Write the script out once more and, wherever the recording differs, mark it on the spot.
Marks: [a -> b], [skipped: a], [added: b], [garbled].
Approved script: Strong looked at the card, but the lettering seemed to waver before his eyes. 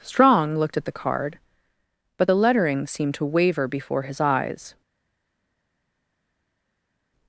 Strong looked at the card, but the lettering seemed to waver before his eyes.